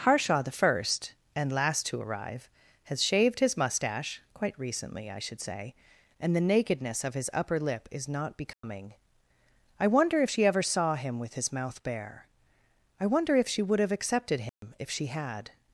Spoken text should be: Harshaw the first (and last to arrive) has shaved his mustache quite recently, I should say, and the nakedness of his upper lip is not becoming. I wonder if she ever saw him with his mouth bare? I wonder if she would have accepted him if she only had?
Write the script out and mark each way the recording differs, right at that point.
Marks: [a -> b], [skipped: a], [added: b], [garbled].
Harshaw the first (and last to arrive) has shaved his mustache quite recently, I should say, and the nakedness of his upper lip is not becoming. I wonder if she ever saw him with his mouth bare? I wonder if she would have accepted him if she [skipped: only] had?